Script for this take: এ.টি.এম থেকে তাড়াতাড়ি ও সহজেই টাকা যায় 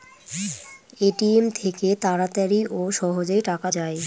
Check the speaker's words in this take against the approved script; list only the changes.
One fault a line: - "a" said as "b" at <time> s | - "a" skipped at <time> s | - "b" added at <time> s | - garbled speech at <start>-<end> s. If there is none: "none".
none